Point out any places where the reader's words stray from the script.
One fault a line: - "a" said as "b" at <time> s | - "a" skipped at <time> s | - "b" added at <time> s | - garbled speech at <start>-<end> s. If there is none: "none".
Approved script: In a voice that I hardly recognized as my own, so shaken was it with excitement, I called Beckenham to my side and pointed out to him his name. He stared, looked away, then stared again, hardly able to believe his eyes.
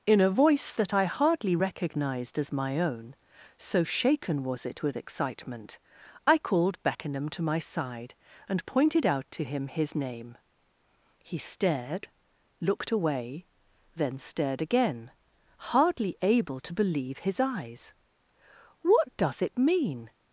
- "What does it mean" added at 18.8 s